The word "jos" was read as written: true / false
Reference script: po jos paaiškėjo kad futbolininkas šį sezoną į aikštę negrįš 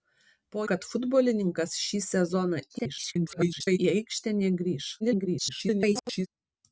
false